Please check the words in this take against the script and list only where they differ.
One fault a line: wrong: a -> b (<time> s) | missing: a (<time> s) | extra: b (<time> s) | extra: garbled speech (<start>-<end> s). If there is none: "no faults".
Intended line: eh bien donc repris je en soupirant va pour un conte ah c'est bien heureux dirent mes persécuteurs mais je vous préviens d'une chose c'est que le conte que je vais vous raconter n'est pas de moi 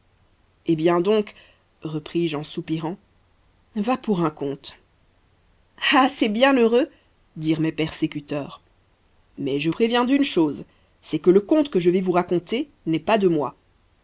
missing: vous (9.7 s)